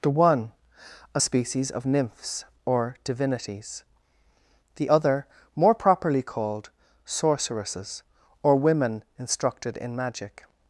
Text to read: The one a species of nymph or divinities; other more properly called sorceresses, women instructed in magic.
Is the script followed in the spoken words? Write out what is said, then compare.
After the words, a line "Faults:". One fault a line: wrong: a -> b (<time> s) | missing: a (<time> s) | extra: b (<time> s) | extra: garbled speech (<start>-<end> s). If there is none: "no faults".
The one a species of nymphs or divinities; the other more properly called sorceresses, or women instructed in magic.
Faults:
wrong: nymph -> nymphs (1.8 s)
extra: the (4.8 s)
extra: or (8.4 s)